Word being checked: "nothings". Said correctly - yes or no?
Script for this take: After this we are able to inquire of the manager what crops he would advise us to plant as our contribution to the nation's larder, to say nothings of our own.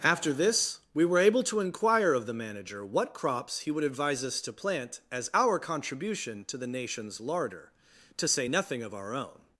no